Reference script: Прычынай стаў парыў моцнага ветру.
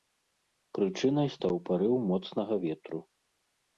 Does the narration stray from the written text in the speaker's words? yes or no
no